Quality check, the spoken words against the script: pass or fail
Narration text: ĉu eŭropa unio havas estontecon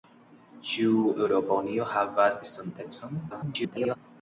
fail